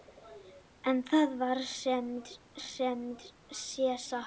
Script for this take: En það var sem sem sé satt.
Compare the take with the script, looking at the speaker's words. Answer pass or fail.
pass